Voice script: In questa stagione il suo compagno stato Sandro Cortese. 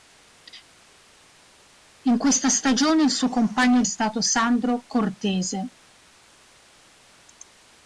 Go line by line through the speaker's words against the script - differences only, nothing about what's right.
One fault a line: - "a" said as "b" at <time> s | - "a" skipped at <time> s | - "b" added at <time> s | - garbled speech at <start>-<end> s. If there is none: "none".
none